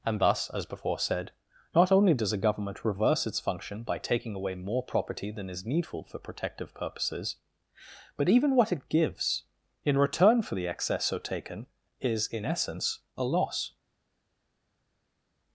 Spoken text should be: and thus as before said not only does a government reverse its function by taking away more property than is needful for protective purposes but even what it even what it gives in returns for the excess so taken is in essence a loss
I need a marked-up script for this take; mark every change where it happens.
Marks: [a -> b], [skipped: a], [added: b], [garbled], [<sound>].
and thus as before said not only does a government reverse its function by taking away more property than is needful for protective purposes but even what it [skipped: even what it] gives in [returns -> return] for the excess so taken is in essence a loss